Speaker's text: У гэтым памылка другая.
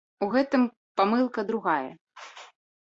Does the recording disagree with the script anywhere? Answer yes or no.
no